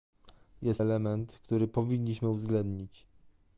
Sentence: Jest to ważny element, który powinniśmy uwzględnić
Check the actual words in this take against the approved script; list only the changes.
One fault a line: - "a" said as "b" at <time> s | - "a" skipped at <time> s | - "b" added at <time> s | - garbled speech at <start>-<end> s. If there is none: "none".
- "to ważny" skipped at 0.8 s